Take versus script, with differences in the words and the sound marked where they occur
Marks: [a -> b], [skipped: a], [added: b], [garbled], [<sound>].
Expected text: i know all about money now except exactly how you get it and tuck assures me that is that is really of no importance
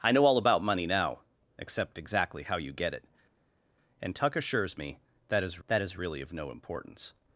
i know all about money now except exactly how you get it and tuck assures me that is that is really of no importance